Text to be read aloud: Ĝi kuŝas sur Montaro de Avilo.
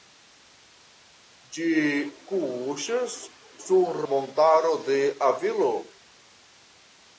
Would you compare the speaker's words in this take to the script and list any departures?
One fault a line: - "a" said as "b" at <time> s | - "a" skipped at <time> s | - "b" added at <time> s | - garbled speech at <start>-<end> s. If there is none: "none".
none